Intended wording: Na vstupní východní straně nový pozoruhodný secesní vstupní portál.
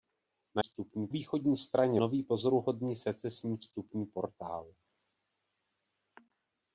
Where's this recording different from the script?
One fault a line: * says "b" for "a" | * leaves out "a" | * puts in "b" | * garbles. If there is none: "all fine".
all fine